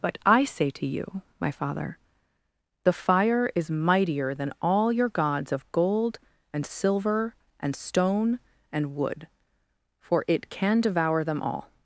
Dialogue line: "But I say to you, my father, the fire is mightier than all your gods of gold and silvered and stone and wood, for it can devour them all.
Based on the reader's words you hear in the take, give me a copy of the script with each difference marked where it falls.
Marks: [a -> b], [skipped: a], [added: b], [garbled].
"But I say to you, my father, the fire is mightier than all your gods of gold and [silvered -> silver] and stone and wood, for it can devour them all.